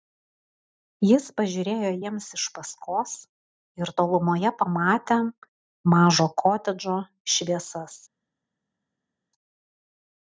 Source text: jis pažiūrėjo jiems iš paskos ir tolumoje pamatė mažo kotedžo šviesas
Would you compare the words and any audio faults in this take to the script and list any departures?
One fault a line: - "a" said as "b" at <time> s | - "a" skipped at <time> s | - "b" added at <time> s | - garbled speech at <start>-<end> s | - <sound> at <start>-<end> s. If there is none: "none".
none